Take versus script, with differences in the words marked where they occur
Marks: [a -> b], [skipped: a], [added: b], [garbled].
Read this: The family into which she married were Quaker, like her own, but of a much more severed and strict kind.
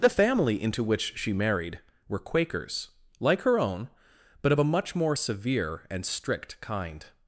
The family into which she married were [Quaker, -> Quakers] like her own, but of a much more [severed -> severe] and strict kind.